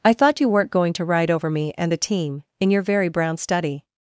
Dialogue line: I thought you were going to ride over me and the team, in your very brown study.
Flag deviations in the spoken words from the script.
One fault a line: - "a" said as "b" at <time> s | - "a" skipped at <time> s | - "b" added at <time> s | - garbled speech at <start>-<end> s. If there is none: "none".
- "were" said as "weren't" at 0.5 s